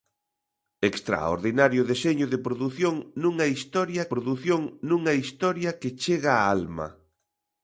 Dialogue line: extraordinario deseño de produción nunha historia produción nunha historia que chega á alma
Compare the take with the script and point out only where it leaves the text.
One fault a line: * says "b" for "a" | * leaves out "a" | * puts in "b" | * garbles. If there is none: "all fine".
all fine